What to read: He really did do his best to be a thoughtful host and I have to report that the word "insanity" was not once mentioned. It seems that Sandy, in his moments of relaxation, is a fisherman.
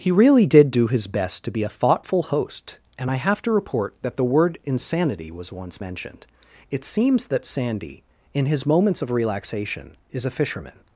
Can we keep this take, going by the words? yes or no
no